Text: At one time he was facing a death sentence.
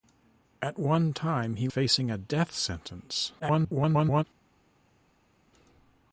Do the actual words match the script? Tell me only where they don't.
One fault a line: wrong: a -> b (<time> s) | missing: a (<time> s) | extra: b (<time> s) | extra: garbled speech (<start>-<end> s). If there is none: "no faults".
missing: was (1.7 s)
extra: garbled speech (3.4-4.2 s)